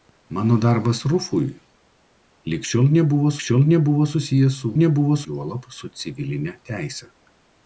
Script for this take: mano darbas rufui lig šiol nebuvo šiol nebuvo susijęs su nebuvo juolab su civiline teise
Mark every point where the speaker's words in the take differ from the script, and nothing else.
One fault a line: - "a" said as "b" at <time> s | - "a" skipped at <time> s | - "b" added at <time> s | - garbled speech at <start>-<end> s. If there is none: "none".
none